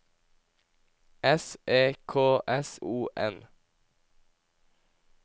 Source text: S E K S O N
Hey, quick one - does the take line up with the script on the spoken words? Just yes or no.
yes